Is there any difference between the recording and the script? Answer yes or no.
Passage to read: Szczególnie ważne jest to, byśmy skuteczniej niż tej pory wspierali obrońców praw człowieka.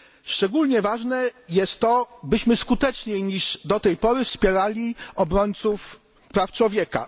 yes